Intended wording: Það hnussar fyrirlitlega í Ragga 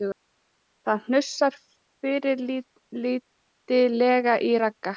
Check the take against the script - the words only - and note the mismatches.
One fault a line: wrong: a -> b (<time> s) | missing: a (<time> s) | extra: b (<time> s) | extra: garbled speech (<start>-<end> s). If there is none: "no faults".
no faults